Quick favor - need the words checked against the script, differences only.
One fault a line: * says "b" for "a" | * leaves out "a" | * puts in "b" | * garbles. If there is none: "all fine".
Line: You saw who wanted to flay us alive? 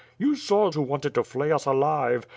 all fine